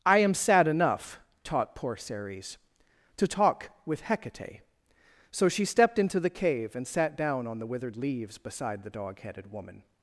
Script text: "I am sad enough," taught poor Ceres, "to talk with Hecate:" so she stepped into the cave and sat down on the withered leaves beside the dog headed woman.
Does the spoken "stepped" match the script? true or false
true